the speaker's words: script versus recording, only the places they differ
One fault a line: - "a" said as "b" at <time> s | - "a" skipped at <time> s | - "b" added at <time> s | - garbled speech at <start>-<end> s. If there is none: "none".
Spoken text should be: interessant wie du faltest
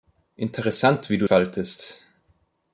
none